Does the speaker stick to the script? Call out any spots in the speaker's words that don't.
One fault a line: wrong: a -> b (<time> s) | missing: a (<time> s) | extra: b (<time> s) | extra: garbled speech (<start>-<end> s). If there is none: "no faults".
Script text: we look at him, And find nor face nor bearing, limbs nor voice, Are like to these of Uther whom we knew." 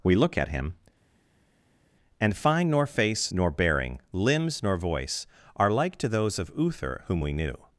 wrong: these -> those (6.1 s)